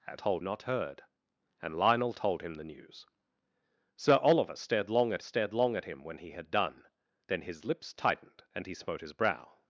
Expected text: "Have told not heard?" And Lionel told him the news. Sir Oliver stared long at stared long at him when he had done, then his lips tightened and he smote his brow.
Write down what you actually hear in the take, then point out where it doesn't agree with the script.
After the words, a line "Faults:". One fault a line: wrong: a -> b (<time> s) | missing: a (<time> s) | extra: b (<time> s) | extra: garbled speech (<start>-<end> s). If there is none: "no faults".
"Have told not heard?" And Lionel told him the news. Sir Oliver stared long at stared long at him when he had done, then his lips tightened and he smote his brow.
Faults:
no faults